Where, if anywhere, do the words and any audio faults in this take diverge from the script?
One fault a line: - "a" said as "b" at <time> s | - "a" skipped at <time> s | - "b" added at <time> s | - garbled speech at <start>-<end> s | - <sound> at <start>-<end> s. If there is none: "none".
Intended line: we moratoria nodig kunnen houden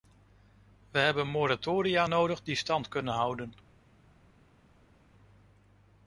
- "hebben" added at 1.0 s
- "die stand" added at 2.4 s